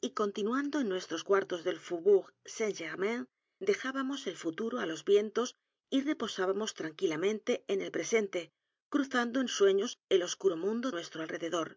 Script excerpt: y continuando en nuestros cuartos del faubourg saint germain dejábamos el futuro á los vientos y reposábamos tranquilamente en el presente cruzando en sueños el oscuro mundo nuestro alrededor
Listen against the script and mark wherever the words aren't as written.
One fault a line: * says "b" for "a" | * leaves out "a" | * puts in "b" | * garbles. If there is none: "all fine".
all fine